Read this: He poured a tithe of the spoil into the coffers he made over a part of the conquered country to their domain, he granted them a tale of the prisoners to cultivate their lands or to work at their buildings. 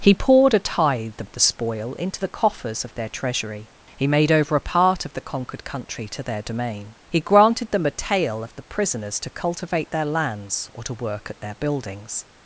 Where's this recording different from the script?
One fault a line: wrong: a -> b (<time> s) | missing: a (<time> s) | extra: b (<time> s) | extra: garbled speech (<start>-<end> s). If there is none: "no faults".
extra: of their treasury (2.8 s)